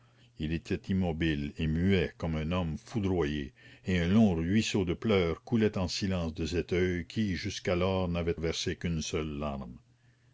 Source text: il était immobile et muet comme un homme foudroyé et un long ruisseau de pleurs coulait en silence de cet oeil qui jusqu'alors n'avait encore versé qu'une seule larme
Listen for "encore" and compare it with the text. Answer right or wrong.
wrong